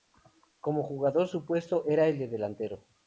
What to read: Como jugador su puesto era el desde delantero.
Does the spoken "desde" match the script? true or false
false